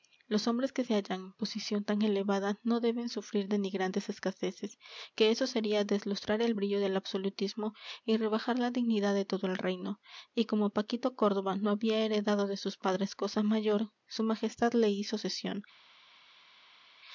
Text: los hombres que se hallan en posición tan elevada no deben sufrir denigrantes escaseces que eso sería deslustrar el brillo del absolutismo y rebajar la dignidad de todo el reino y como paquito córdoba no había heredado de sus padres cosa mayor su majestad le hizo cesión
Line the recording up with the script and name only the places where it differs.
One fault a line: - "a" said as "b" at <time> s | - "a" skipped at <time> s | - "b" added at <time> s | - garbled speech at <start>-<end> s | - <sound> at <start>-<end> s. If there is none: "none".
none